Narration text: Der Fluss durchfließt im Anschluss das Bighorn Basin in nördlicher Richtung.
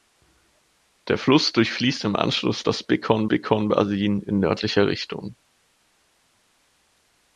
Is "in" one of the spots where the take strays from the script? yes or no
no